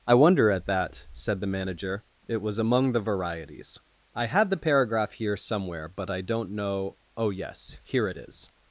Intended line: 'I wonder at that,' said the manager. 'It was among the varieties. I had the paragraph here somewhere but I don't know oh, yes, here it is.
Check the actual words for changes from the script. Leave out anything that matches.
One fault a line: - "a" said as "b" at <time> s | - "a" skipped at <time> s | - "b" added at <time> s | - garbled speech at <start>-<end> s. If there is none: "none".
none